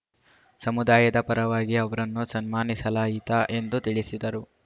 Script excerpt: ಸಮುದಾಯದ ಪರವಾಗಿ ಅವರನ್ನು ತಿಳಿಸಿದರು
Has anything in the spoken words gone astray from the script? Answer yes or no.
yes